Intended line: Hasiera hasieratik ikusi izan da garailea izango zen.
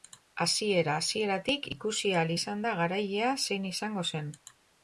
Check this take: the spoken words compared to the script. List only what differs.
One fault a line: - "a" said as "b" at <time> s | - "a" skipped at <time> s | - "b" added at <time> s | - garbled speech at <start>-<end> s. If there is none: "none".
- "ahal" added at 2.2 s
- "zein" added at 3.5 s